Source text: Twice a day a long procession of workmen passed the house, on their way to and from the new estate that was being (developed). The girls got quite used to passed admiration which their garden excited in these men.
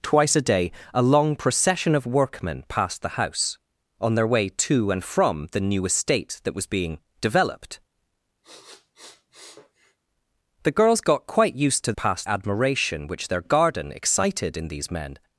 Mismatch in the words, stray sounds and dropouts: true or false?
true